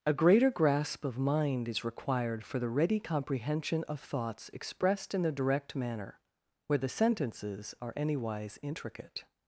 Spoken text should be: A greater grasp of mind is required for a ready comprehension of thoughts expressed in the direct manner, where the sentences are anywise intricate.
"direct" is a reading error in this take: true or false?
false